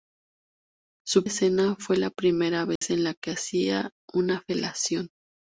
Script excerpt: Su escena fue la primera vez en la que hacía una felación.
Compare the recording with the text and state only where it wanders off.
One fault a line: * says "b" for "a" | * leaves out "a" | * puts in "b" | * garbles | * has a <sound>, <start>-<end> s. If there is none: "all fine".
* has a dropout, 2.8-2.8 s